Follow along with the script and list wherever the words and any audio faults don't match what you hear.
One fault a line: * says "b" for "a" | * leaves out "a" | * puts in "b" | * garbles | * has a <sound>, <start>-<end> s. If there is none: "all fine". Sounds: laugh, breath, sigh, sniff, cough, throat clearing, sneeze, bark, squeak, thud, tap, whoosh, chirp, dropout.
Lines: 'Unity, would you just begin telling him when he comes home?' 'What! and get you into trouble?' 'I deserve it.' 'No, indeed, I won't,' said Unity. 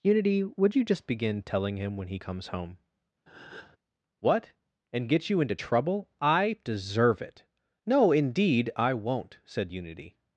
* has a breath, 3.3-3.8 s